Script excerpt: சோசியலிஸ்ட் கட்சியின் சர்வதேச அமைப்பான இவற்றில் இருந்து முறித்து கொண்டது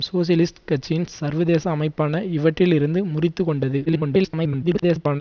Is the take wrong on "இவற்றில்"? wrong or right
right